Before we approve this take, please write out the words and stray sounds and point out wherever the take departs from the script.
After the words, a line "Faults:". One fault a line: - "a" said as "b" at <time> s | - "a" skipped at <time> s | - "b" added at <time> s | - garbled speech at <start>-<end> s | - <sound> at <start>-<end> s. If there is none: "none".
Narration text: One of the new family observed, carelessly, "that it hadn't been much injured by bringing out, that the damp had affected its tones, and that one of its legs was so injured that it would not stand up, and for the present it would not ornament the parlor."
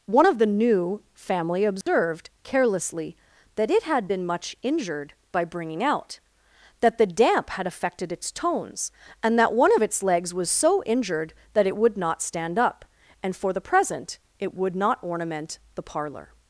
One of the new family observed, carelessly, "that it had been much injured by bringing out, that the damp had affected its tones, and that one of its legs was so injured that it would not stand up, and for the present it would not ornament the parlor."
Faults:
- dropout at 1.8-1.9 s
- "hadn't" said as "had" at 3.8 s